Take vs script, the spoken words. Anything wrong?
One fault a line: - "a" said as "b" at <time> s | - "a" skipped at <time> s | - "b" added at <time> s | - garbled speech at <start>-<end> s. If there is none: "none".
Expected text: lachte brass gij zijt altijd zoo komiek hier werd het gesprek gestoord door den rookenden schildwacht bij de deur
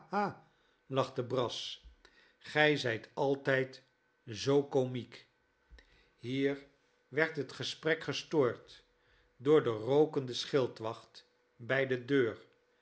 none